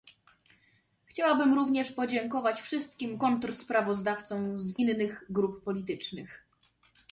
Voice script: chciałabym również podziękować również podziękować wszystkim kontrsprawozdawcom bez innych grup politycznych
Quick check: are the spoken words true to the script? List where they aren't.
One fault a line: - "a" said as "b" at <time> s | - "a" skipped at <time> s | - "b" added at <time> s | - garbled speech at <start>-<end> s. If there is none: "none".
- "również podziękować" skipped at 2.6 s
- "bez" said as "z" at 4.6 s